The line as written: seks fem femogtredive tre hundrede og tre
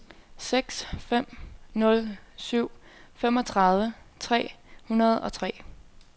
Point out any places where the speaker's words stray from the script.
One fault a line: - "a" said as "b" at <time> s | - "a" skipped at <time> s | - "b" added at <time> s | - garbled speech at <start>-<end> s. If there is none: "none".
- "nul syv" added at 1.7 s